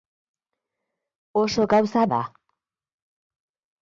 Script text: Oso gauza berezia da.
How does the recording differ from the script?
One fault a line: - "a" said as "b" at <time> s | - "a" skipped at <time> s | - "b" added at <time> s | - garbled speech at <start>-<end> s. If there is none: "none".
- "berezia" skipped at 2.1 s